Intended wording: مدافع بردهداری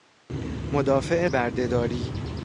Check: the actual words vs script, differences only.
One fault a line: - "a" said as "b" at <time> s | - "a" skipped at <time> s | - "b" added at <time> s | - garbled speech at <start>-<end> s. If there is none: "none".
none